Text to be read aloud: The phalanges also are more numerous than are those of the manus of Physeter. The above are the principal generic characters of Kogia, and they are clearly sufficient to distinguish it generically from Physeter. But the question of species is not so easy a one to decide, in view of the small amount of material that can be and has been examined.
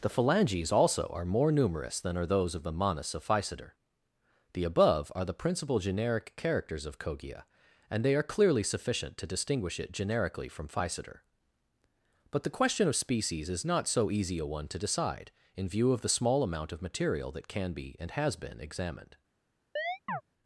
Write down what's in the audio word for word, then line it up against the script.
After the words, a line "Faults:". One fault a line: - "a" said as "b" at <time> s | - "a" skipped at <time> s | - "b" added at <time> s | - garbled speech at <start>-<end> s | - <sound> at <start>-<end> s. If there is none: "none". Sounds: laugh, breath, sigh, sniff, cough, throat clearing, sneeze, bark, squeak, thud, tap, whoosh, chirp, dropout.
The phalanges also are more numerous than are those of the manus of Physeter. The above are the principal generic characters of Kogia, and they are clearly sufficient to distinguish it generically from Physeter. But the question of species is not so easy a one to decide, in view of the small amount of material that can be and has been examined.
Faults:
- chirp at 19.8-20.2 s